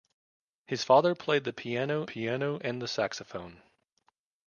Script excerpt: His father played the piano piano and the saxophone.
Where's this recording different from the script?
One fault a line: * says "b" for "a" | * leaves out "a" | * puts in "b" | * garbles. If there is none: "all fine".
all fine